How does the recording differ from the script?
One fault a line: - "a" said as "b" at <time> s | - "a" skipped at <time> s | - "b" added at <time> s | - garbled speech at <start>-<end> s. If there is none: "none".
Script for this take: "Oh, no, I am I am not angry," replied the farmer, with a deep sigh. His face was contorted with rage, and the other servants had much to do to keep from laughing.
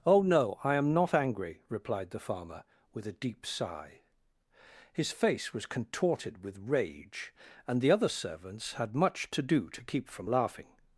- "I am" skipped at 0.9 s